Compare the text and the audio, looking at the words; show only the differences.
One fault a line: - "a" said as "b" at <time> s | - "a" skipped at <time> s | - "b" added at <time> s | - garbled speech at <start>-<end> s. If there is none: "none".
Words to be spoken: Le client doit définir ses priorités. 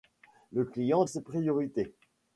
- "doit définir" skipped at 1.1 s